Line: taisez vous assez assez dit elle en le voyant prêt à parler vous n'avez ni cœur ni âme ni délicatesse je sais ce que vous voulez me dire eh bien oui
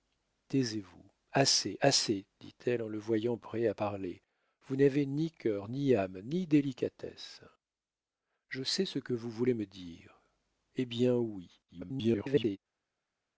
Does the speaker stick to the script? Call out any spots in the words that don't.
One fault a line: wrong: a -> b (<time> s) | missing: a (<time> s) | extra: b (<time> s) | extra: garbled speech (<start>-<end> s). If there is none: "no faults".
extra: garbled speech (11.7-12.6 s)